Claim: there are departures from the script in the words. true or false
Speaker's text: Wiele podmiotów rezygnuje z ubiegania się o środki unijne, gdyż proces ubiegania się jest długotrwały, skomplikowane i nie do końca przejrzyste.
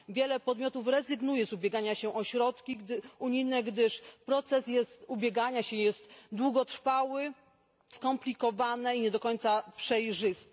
false